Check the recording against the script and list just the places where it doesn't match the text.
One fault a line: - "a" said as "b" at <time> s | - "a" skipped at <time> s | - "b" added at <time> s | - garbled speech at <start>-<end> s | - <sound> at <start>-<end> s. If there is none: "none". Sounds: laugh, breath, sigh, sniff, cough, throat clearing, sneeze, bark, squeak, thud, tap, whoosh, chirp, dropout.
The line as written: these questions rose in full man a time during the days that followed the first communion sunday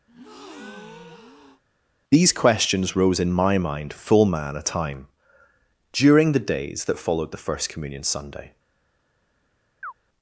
- breath at 0.1-1.6 s
- "my mind" added at 3.3 s
- chirp at 9.8-9.9 s